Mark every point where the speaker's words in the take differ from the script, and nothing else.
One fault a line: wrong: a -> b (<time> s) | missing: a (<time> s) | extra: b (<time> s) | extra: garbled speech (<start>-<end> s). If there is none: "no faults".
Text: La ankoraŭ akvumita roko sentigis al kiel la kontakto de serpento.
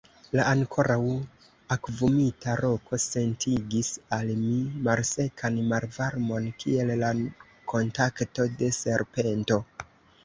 extra: mi malsekan malvarmon (4.4 s)